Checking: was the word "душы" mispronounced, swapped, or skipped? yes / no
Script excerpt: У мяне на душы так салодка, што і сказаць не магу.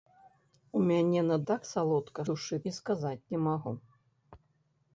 yes